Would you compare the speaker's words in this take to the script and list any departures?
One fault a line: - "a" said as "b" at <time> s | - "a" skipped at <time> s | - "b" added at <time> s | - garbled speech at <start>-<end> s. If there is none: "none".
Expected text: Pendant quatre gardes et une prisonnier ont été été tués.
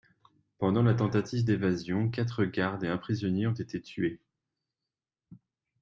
- "la tentative d'évasion" added at 0.8 s
- "une" said as "un" at 2.9 s
- "été" skipped at 3.8 s